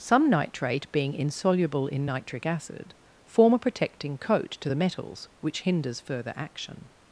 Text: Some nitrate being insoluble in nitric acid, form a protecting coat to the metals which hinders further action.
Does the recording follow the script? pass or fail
pass